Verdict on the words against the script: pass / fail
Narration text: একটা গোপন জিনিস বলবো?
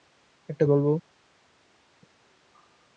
fail